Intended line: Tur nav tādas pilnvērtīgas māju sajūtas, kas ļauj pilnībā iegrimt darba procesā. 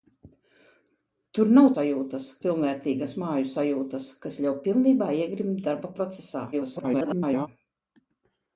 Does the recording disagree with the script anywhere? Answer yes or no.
yes